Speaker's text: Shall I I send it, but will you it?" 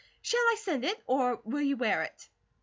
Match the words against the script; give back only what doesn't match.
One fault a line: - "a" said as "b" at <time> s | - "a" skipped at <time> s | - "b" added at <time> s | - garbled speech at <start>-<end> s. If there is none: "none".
- "I" skipped at 0.6 s
- "but" said as "or" at 1.1 s
- "wear" added at 1.8 s